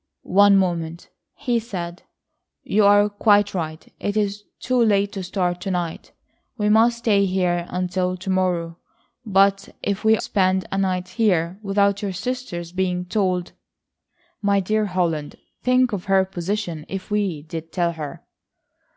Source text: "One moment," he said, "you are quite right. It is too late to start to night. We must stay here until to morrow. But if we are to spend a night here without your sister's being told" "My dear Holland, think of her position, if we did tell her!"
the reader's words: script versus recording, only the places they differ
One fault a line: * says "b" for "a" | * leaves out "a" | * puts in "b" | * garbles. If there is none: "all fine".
* leaves out "are to"